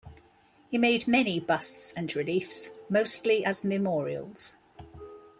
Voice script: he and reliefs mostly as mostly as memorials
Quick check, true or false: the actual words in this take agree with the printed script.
false